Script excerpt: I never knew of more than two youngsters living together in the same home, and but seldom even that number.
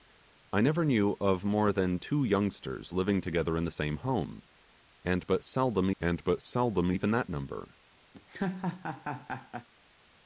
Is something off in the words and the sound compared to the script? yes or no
yes